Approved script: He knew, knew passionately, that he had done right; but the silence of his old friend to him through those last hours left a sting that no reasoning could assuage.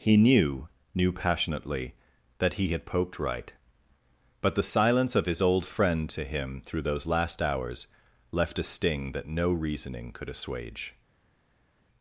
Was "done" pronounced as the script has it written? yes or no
no